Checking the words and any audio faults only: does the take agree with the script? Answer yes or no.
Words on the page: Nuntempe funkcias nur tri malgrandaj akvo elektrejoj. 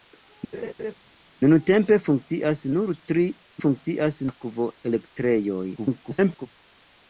no